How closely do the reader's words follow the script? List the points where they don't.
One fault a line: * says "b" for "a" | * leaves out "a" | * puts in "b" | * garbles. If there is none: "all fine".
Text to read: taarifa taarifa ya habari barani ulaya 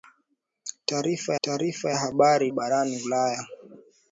all fine